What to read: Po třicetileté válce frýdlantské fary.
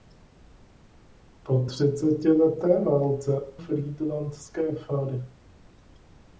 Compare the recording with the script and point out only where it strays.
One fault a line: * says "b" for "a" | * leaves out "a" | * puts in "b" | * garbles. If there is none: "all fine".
all fine